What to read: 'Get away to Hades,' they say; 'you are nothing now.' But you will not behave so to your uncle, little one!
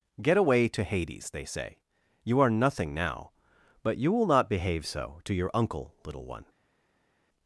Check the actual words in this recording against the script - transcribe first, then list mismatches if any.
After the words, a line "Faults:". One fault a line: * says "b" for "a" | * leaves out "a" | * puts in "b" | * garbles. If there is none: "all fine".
'Get away to Hades,' they say; 'you are nothing now.' But you will not behave so to your uncle, little one!
Faults:
all fine